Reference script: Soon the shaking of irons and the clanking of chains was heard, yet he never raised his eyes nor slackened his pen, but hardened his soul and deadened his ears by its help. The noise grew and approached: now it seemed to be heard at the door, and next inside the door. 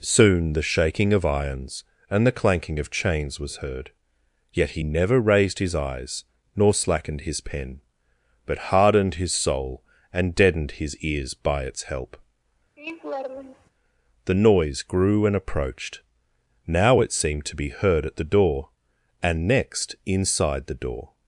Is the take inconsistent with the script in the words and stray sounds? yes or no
yes